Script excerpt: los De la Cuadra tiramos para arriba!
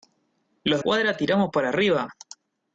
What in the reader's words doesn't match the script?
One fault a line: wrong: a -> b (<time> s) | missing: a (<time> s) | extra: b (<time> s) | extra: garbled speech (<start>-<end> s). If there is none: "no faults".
missing: De la (0.8 s)